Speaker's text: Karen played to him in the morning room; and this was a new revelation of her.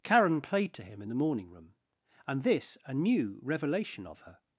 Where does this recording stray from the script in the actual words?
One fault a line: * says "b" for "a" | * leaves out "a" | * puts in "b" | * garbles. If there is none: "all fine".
* leaves out "was"